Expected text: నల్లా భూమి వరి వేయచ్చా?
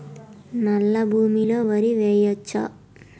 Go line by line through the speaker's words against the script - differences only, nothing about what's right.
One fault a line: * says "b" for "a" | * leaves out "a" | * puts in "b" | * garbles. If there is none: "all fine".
* puts in "లో"